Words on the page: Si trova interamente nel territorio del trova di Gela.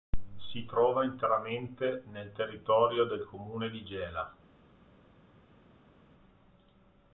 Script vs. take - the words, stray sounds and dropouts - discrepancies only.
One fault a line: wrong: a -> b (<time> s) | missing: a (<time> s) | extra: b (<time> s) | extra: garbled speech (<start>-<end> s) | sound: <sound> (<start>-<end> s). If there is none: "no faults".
wrong: trova -> comune (3.3 s)